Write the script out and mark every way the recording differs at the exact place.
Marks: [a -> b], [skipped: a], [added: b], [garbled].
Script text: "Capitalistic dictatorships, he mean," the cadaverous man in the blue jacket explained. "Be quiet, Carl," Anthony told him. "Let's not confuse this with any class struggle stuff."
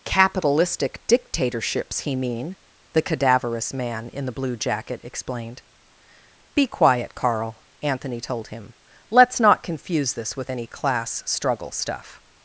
"Capitalistic dictatorships, he mean," the cadaverous man in the blue jacket explained. "Be quiet, Carl," Anthony told him. "Let's not confuse this with any class struggle stuff."